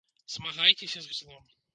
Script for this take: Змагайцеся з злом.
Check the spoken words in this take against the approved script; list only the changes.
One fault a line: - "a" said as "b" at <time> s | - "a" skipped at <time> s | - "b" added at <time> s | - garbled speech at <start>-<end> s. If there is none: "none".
none